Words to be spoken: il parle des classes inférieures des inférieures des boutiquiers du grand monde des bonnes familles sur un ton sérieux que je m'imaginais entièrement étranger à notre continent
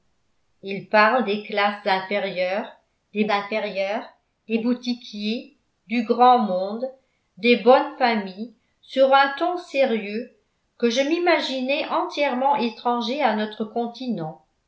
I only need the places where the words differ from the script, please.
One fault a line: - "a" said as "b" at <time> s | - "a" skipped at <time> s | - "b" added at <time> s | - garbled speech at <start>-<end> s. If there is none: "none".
none